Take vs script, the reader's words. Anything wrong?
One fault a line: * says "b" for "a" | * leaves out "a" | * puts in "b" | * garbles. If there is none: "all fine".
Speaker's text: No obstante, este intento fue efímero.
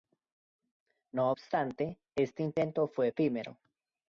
all fine